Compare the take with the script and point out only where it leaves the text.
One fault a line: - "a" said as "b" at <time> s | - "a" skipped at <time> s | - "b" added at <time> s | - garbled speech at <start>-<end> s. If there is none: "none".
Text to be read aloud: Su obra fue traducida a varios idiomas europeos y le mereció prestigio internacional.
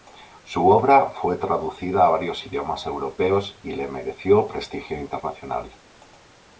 none